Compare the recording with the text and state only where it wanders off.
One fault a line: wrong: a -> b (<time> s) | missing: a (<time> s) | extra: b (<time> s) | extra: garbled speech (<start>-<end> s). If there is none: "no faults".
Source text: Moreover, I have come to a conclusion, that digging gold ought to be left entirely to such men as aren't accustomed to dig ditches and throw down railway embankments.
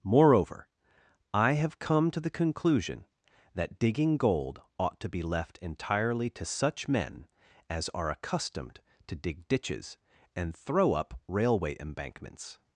wrong: a -> the (2.2 s)
wrong: aren't -> are (7.9 s)
wrong: down -> up (10.9 s)